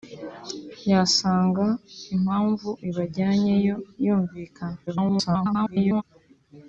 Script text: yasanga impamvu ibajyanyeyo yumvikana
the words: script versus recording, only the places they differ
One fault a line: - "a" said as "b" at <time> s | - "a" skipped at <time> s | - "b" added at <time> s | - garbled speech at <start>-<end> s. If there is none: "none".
- garbled speech at 4.9-6.0 s